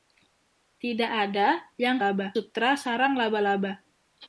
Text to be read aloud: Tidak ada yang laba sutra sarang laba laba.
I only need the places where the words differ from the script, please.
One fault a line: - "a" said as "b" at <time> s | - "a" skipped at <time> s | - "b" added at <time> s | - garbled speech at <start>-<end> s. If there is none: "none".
none